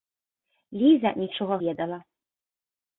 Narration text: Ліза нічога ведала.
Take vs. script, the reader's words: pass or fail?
pass